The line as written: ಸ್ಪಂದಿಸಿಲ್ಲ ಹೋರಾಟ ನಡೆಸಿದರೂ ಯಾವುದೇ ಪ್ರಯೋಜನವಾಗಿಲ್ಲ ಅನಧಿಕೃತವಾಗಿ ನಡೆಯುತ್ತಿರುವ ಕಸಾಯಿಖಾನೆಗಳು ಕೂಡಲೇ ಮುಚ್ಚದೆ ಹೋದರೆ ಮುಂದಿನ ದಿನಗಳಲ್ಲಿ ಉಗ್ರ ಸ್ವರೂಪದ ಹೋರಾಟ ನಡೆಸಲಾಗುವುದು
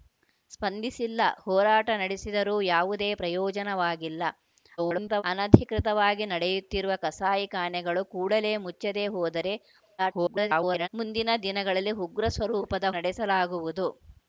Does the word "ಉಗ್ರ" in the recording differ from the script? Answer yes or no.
no